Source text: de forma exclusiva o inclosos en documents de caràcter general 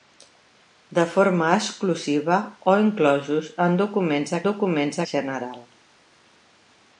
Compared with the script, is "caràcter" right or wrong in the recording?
wrong